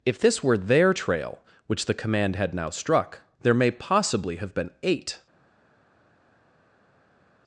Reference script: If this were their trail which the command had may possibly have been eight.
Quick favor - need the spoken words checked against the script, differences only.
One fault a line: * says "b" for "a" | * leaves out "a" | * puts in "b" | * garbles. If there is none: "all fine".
* puts in "now struck there"